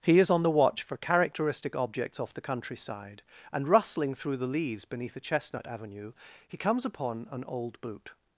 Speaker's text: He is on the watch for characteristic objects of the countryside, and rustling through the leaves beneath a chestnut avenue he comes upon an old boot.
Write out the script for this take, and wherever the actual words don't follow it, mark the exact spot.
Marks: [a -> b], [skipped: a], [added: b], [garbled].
He is on the watch for characteristic objects [of -> off] the countryside, and rustling through the leaves beneath a chestnut avenue he comes upon an old boot.